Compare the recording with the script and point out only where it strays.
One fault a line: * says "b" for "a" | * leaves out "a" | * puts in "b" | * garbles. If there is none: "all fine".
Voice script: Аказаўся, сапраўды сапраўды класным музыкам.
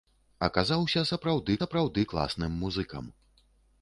all fine